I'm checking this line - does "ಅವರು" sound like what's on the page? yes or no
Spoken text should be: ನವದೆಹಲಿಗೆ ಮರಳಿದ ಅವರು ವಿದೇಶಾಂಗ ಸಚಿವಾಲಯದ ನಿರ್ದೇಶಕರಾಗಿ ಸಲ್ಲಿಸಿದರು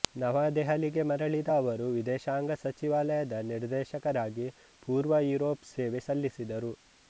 yes